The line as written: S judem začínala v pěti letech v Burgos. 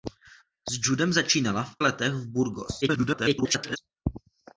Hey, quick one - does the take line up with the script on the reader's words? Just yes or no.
no